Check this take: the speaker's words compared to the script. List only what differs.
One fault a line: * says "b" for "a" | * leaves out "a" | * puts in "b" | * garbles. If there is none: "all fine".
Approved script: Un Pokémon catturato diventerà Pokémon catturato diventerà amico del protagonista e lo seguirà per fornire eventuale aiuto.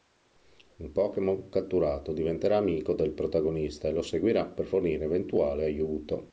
* leaves out "Pokémon catturato diventerà"